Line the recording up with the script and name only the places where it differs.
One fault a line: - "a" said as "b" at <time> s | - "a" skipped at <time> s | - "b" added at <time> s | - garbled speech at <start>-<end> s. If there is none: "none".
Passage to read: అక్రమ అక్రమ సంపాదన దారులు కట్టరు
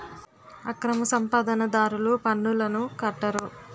- "అక్రమ" skipped at 1.0 s
- "పన్నులను" added at 2.2 s